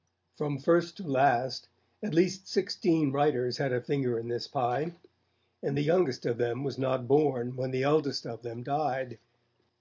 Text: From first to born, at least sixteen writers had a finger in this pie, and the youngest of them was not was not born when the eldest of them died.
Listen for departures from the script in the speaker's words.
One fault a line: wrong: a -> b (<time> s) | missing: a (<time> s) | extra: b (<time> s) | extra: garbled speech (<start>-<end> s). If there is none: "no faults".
wrong: born -> last (1.1 s)
missing: was not (7.0 s)